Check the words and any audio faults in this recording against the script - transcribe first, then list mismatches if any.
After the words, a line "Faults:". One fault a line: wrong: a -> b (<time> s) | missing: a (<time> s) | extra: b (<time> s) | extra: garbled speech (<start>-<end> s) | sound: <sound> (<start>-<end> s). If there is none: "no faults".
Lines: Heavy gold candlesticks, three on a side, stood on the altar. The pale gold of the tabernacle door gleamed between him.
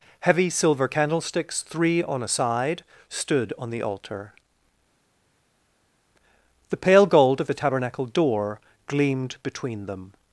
Heavy silver candlesticks, three on a side, stood on the altar. The pale gold of the tabernacle door gleamed between them.
Faults:
wrong: gold -> silver (0.5 s)
wrong: him -> them (9.9 s)